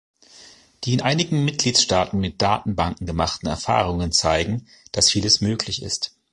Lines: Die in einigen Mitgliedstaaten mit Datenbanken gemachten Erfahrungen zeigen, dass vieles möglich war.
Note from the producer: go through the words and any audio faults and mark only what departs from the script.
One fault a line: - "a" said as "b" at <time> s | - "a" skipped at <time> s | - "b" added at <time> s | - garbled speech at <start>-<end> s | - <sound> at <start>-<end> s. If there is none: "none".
- "war" said as "ist" at 5.8 s